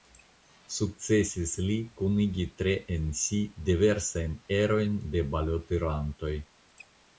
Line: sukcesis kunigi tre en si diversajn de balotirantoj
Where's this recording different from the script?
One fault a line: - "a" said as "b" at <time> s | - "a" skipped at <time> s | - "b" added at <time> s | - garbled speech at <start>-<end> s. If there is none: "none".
- "li" added at 1.6 s
- "erojn" added at 4.6 s